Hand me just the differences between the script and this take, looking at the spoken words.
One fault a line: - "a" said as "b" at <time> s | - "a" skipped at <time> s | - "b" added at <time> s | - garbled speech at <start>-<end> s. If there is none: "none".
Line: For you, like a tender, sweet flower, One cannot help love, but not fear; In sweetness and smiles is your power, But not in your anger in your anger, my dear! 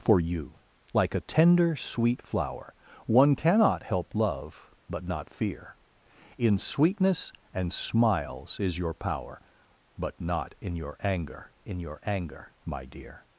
none